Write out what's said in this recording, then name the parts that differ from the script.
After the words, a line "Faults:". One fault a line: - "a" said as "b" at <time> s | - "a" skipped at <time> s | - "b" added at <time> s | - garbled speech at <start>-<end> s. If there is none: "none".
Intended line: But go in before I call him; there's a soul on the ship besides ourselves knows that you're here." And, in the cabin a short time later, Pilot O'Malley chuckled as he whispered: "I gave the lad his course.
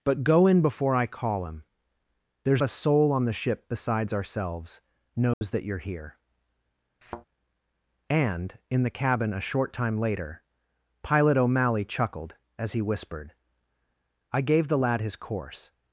But go in before I call him; there's a soul on the ship besides ourselves knows that you're here." And, in the cabin a short time later, Pilot O'Malley chuckled as he whispered: "I gave the lad his course.
Faults:
none